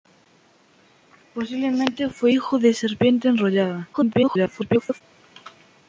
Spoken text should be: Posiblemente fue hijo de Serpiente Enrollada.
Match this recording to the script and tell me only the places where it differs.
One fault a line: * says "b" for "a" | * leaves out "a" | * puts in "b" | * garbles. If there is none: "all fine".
* garbles